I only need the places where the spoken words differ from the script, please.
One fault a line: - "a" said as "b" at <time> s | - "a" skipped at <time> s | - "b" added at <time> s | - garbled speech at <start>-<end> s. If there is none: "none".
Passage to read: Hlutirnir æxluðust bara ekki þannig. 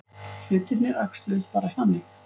- "ekki" skipped at 1.7 s